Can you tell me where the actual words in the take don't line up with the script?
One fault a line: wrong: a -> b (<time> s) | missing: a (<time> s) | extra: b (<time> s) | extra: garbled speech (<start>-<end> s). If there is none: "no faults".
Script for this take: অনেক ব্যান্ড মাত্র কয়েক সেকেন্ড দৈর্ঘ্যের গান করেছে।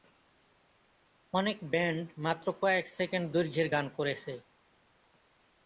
no faults